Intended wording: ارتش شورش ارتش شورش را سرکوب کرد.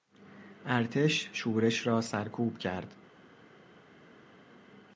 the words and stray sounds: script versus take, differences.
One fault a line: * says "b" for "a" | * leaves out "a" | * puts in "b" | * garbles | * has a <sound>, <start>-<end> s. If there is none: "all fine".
* leaves out "ارتش شورش"